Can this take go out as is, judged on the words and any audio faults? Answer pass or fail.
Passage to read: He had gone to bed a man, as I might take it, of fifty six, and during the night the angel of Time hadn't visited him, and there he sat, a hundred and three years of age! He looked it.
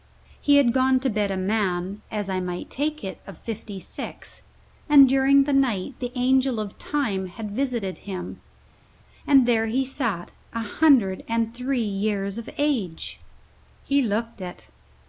fail